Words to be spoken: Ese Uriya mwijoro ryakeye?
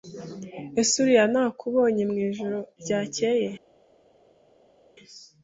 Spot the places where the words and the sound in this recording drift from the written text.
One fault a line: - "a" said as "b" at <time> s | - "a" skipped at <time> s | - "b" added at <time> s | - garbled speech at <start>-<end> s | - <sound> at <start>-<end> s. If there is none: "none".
- "nakubonye" added at 1.3 s